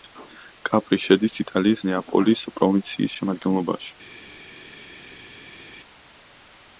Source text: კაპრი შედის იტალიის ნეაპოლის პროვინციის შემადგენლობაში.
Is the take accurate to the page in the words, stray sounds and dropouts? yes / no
yes